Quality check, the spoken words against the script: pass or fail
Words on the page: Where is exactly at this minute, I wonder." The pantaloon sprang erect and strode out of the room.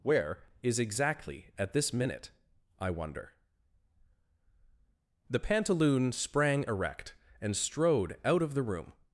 pass